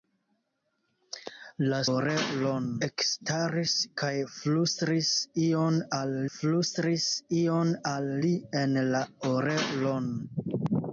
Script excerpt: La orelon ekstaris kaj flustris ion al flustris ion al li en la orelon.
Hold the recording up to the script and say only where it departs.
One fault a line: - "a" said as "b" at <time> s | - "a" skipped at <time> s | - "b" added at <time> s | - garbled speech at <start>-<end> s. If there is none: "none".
none